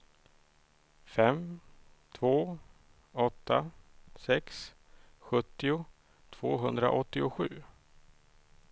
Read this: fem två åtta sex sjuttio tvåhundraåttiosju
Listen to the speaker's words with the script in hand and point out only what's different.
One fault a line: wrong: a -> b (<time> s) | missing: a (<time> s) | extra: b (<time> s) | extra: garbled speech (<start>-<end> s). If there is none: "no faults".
no faults